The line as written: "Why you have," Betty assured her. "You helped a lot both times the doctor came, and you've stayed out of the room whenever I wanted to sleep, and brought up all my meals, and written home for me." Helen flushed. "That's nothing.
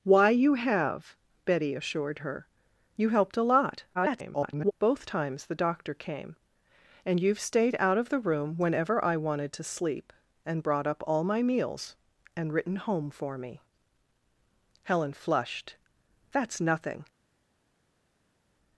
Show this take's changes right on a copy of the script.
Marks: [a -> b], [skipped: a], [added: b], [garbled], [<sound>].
"Why you have," Betty assured her. "You helped a lot [garbled] both times the doctor came, and you've stayed out of the room whenever I wanted to sleep, and brought up all my meals, and written home for me." Helen flushed. "That's nothing.